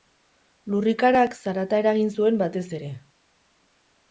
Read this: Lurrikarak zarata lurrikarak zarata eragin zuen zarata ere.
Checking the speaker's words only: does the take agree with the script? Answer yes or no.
no